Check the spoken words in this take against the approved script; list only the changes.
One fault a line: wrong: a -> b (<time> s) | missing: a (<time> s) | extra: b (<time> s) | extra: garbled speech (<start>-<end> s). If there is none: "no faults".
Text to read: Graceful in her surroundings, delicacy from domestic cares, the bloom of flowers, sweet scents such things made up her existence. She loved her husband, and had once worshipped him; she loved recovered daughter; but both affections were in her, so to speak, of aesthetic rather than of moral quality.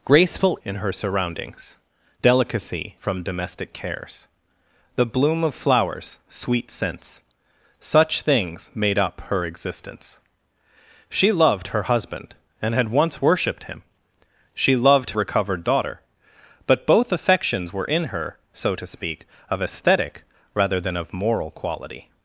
no faults